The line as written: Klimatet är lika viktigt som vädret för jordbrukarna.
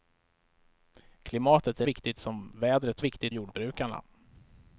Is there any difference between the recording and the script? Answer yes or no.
yes